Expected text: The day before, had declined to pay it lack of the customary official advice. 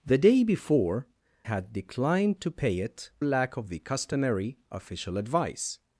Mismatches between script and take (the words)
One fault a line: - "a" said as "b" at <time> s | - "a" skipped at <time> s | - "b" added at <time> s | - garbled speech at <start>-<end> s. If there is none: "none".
none